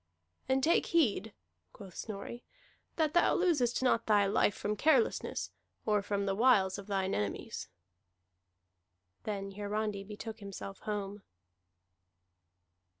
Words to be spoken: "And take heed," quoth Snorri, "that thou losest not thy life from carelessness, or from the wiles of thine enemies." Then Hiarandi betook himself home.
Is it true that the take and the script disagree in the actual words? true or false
false